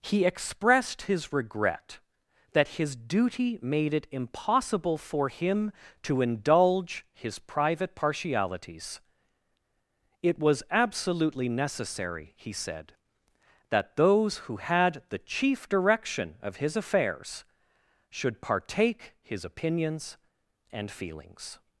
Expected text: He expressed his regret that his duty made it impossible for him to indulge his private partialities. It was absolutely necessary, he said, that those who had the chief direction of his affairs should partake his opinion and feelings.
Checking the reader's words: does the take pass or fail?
fail